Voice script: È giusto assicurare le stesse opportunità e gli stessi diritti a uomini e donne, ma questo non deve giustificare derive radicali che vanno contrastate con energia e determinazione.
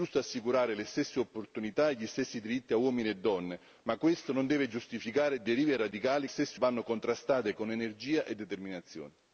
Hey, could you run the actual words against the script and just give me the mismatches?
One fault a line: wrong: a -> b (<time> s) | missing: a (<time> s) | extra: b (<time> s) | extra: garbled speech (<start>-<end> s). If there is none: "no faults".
wrong: che -> stesse (6.3 s)